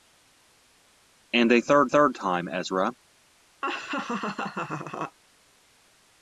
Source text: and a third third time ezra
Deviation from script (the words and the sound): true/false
true